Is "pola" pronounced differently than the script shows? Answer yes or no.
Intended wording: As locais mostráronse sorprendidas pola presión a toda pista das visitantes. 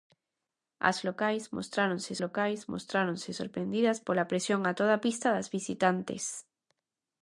no